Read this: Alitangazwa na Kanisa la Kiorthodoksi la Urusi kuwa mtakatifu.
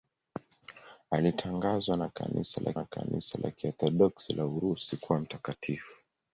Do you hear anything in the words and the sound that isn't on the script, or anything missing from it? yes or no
yes